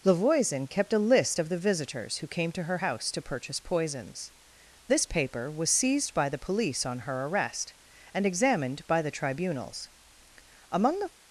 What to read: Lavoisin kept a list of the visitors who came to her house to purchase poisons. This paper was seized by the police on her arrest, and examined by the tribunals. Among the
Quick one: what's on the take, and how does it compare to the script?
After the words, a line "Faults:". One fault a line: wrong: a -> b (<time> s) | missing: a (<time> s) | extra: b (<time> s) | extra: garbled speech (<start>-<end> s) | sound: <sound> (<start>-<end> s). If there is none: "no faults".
Lavoisin kept a list of the visitors who came to her house to purchase poisons. This paper was seized by the police on her arrest, and examined by the tribunals. Among the
Faults:
no faults